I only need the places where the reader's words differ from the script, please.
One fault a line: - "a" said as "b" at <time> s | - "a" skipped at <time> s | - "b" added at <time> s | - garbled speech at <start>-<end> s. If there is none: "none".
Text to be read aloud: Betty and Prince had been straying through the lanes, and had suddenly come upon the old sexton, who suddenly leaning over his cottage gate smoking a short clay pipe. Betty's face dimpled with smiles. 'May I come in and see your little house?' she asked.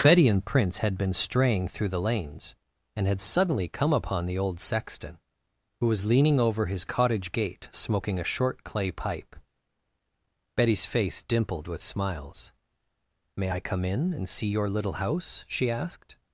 - "suddenly" said as "was" at 5.8 s